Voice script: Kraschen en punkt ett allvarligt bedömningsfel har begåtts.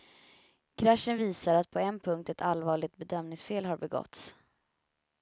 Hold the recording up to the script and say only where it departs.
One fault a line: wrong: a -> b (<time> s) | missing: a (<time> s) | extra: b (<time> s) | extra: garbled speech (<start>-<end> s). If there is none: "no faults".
extra: visar att på (1.2 s)